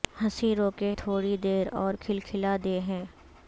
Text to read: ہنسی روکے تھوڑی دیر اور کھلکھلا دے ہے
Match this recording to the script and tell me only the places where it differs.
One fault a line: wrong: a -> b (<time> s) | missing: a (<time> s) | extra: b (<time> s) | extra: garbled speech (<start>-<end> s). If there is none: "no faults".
no faults